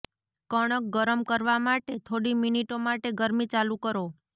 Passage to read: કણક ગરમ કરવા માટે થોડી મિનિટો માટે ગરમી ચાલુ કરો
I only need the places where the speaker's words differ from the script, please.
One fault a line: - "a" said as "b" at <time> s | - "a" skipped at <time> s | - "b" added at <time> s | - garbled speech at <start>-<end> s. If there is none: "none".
none